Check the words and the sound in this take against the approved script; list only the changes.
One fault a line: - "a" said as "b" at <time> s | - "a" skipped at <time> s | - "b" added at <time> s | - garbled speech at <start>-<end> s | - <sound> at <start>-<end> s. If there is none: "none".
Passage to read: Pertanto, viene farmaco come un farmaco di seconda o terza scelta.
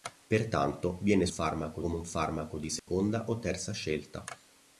- dropout at 2.8-2.9 s